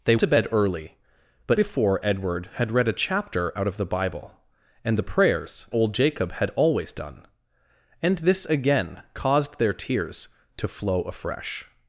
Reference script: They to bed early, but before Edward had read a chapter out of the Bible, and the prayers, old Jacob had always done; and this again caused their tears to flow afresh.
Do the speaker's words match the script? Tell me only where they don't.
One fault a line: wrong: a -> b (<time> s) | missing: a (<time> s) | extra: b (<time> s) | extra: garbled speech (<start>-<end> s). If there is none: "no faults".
no faults